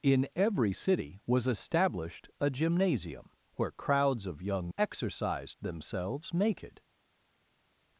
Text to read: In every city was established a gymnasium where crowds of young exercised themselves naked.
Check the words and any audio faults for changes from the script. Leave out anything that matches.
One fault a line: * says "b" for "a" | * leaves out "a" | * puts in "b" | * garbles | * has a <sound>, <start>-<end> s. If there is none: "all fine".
all fine